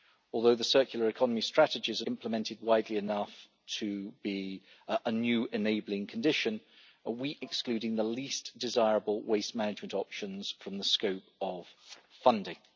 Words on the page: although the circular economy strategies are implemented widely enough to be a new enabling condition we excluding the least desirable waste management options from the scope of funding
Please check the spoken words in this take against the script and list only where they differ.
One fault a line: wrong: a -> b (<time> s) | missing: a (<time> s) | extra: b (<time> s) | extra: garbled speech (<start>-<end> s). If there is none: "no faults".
no faults